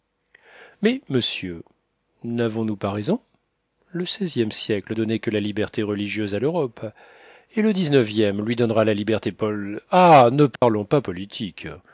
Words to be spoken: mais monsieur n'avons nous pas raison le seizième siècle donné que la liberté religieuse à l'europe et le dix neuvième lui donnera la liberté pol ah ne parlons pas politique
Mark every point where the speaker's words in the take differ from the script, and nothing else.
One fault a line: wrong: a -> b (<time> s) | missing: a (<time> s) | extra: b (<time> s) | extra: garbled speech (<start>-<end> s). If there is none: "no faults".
no faults